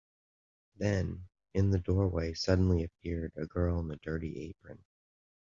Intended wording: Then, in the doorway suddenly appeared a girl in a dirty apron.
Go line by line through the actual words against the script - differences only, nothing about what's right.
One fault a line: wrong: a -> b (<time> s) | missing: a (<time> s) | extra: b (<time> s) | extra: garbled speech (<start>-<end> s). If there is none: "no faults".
no faults